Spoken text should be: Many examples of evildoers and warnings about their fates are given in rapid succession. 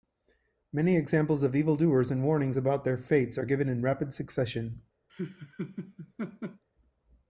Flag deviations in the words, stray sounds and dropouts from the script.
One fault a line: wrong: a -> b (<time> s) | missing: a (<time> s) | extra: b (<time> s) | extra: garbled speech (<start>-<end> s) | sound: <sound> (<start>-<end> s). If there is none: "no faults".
sound: laugh (5.1-6.6 s)